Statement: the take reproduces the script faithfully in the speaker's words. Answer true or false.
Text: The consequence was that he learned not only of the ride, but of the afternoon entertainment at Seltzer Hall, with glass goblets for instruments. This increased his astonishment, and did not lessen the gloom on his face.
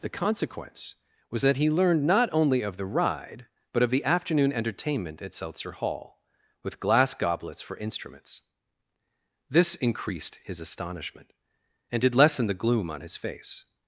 false